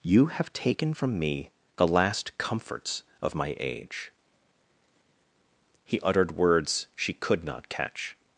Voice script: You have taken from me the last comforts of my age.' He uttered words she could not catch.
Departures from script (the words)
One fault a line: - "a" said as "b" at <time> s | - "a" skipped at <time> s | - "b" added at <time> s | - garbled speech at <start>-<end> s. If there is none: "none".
none